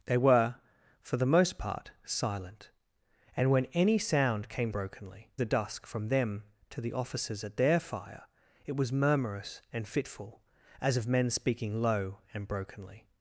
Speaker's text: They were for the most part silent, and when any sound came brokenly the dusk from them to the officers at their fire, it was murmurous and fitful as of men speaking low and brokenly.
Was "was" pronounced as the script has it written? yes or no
yes